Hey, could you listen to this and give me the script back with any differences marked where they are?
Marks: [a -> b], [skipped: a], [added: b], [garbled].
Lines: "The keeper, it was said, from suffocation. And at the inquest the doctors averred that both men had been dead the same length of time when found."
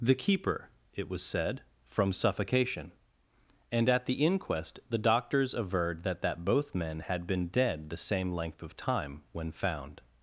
"The keeper, it was said, from suffocation. And at the inquest the doctors averred that [added: that] both men had been dead the same length of time when found."